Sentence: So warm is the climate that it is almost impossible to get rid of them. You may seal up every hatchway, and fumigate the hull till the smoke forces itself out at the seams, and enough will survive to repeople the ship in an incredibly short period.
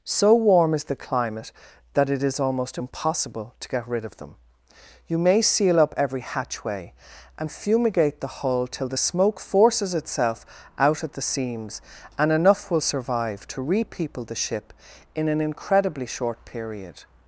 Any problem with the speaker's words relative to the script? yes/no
no